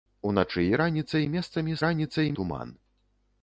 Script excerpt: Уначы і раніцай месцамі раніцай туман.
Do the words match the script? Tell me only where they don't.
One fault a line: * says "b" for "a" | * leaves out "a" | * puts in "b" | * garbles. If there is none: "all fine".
all fine